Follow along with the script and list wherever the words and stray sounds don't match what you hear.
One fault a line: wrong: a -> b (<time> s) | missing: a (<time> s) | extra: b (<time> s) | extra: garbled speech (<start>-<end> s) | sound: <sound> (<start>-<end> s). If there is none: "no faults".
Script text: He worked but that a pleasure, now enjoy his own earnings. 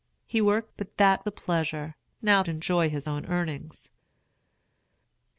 no faults